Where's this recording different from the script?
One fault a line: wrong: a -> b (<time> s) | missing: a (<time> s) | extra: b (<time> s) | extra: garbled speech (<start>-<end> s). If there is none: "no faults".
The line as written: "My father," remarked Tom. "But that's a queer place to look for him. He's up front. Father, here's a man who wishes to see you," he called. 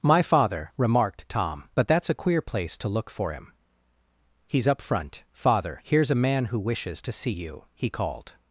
no faults